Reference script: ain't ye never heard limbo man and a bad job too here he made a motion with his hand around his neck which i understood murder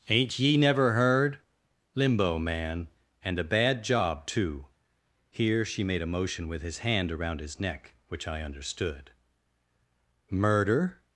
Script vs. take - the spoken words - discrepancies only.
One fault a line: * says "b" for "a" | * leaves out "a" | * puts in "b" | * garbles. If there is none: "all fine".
* says "she" for "he"